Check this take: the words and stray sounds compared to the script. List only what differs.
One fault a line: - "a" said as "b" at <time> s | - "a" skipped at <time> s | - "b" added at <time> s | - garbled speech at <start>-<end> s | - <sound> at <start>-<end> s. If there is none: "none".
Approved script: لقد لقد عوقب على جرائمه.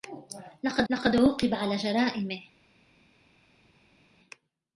none